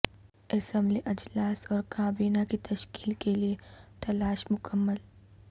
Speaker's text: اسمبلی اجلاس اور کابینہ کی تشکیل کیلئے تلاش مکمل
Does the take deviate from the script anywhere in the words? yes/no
no